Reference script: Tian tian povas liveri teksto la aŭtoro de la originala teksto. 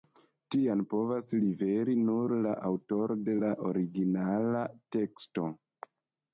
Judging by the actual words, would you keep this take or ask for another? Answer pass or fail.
fail